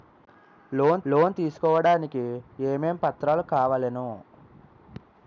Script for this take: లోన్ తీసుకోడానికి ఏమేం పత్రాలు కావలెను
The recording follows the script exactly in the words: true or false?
false